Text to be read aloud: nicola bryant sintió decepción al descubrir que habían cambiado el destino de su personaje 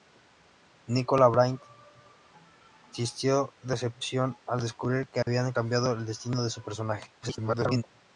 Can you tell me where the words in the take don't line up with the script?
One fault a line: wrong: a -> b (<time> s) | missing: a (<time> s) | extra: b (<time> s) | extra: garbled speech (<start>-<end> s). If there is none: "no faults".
extra: garbled speech (7.2-7.8 s)